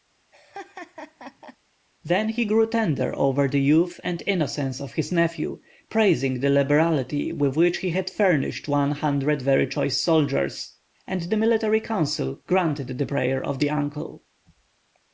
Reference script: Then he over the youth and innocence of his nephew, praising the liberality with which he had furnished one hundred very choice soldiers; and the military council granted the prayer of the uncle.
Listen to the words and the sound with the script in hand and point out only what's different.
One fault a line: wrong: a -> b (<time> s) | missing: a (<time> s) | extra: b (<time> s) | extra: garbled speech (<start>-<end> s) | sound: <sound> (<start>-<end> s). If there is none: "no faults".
sound: laugh (0.3-1.6 s)
extra: grew tender (2.4 s)